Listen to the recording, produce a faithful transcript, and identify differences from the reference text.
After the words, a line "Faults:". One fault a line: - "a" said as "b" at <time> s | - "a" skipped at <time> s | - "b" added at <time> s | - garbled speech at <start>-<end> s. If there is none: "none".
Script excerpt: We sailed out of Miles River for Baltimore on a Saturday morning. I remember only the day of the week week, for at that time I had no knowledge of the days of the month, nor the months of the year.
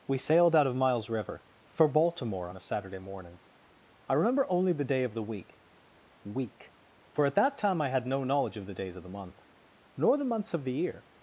We sailed out of Miles River for Baltimore on a Saturday morning. I remember only the day of the week week, for at that time I had no knowledge of the days of the month, nor the months of the year.
Faults:
none